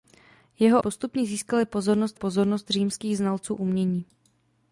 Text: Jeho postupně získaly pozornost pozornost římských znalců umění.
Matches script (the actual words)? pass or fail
pass